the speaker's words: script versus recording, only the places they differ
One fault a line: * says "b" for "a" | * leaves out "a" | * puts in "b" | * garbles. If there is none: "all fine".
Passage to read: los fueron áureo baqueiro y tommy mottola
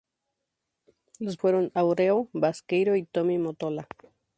all fine